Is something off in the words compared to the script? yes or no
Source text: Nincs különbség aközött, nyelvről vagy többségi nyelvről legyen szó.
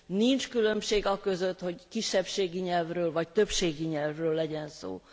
yes